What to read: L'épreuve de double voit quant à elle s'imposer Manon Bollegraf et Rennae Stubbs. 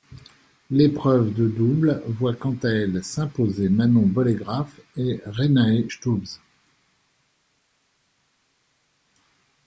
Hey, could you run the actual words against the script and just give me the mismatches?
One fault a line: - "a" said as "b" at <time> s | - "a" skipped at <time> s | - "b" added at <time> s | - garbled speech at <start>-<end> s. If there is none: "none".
none